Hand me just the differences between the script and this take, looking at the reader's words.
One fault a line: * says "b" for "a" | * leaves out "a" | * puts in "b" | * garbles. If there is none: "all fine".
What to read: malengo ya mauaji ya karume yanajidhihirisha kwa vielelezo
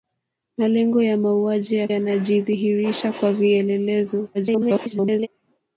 * leaves out "karume"
* garbles